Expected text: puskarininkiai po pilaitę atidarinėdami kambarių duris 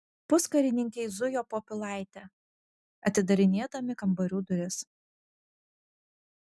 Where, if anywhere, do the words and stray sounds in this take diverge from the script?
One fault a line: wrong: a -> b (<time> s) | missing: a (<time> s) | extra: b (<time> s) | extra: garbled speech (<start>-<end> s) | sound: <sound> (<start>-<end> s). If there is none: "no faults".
extra: zujo (1.2 s)